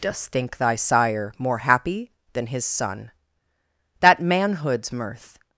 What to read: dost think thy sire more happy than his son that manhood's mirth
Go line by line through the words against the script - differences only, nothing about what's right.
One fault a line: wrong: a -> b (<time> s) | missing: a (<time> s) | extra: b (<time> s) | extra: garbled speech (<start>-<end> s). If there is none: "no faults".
no faults